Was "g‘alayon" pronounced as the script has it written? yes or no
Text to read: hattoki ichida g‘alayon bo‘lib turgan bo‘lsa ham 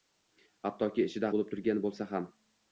no